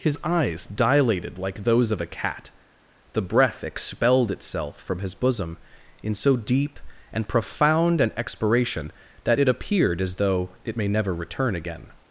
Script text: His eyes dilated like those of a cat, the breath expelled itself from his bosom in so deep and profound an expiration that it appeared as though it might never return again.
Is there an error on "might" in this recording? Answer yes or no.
yes